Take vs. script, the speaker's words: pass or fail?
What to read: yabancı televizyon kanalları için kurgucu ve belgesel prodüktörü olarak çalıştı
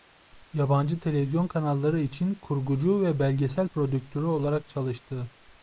pass